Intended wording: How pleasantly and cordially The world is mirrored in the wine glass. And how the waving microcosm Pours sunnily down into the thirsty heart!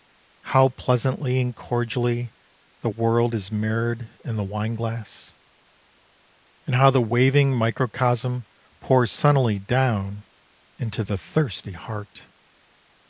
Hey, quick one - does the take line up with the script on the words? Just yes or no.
yes